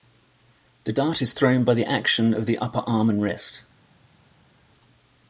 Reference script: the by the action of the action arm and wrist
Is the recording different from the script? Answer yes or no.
yes